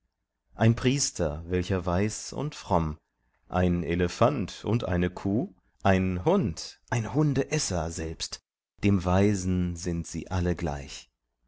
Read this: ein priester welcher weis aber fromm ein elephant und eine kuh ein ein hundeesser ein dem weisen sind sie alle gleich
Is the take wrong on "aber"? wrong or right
wrong